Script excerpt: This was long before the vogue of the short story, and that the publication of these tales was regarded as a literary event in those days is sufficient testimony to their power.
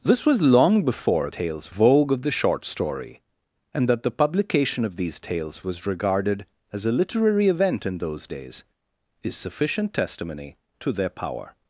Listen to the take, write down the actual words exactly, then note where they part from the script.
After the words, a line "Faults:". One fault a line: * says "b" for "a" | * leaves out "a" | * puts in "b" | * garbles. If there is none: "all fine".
This was long before tales vogue of the short story, and that the publication of these tales was regarded as a literary event in those days is sufficient testimony to their power.
Faults:
* says "tales" for "the"